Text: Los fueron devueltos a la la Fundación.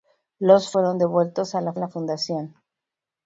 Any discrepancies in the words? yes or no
no